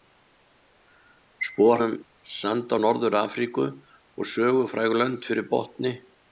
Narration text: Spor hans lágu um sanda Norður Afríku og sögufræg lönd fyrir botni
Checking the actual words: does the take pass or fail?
fail